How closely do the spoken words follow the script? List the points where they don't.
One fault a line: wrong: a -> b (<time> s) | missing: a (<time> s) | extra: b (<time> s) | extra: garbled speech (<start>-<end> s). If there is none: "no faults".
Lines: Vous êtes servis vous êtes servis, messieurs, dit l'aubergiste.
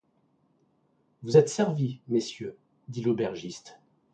missing: vous êtes servis (2.0 s)